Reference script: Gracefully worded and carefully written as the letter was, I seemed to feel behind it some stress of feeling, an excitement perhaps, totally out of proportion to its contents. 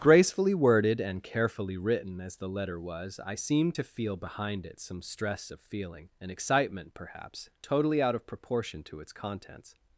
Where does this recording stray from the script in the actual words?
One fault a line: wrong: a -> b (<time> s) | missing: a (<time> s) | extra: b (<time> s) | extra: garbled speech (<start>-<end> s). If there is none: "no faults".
no faults